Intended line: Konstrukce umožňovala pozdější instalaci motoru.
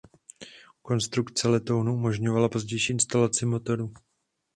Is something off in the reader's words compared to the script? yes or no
yes